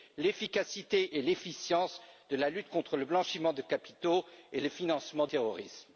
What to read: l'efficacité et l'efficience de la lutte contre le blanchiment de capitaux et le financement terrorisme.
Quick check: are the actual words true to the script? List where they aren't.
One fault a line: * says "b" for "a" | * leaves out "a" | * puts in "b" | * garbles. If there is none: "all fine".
all fine